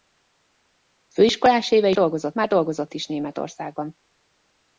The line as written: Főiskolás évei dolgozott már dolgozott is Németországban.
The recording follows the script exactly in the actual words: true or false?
true